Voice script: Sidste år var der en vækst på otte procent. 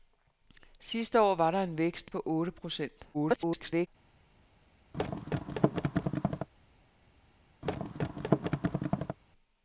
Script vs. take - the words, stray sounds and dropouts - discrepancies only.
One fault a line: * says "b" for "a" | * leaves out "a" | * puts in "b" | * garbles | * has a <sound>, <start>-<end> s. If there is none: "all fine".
* garbles
* has a thud, 4.9-6.5 s
* has a thud, 7.6-9.2 s